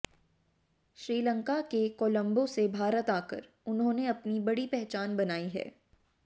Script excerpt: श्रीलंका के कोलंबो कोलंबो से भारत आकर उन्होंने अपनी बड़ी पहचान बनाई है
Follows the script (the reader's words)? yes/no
no